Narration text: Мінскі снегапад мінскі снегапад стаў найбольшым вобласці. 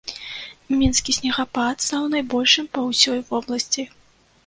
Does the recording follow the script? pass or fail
fail